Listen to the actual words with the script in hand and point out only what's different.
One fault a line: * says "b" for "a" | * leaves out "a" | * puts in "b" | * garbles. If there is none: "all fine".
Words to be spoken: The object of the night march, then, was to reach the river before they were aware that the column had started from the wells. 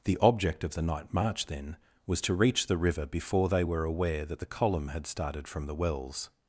all fine